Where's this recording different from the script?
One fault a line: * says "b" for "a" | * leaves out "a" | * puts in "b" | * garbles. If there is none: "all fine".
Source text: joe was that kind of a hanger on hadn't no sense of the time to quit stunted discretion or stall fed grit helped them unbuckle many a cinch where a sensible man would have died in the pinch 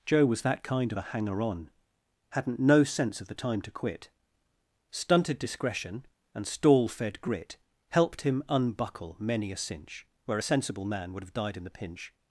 * says "and" for "or"
* says "him" for "them"